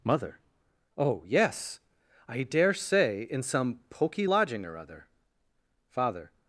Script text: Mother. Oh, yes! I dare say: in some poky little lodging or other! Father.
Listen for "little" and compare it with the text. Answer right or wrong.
wrong